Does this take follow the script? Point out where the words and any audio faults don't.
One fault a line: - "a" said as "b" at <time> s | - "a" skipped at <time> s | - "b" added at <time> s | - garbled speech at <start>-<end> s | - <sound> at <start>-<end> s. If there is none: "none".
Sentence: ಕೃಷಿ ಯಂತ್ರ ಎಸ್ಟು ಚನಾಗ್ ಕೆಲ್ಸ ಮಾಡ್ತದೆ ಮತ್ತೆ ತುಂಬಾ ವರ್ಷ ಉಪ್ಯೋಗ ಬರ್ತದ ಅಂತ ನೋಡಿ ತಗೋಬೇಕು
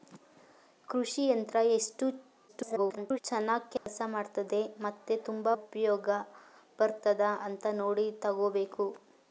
- garbled speech at 2.5-3.2 s
- dropout at 3.8-3.9 s
- "ವರ್ಷ" skipped at 5.5 s